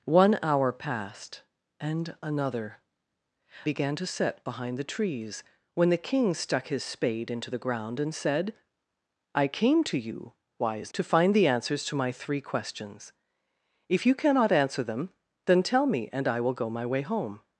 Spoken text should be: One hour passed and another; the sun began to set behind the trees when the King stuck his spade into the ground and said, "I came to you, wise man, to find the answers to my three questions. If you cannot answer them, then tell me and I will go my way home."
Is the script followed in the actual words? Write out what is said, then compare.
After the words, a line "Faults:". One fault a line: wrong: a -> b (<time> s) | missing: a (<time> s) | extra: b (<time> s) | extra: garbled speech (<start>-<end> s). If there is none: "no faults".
One hour passed and another; began to set behind the trees when the King stuck his spade into the ground and said, "I came to you, wise to find the answers to my three questions. If you cannot answer them, then tell me and I will go my way home."
Faults:
missing: the sun (2.8 s)
missing: man (10.9 s)